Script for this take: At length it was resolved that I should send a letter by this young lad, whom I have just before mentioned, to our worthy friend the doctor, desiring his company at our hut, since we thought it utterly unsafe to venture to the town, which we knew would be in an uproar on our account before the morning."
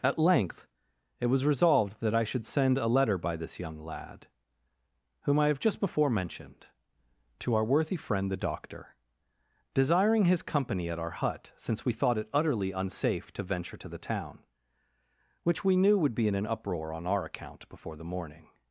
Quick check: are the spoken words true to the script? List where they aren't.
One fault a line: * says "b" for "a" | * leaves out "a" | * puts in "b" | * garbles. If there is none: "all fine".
all fine